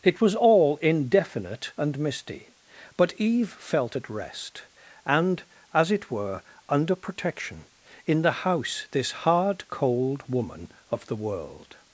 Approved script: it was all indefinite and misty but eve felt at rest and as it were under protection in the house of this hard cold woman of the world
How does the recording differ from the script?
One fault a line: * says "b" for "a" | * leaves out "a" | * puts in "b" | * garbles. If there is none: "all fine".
* leaves out "of"